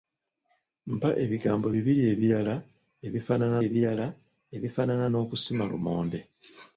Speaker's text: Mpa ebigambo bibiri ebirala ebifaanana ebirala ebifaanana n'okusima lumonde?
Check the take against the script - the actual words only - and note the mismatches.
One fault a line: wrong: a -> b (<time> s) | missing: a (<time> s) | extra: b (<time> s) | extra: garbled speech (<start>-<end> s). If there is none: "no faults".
no faults